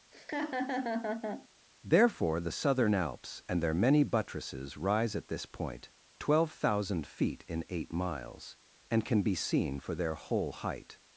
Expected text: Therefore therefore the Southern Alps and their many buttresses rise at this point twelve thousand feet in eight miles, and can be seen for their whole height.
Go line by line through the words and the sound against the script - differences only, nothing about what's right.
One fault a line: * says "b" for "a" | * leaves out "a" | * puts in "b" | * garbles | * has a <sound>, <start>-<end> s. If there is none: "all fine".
* has a laugh, 0.1-1.5 s
* leaves out "therefore"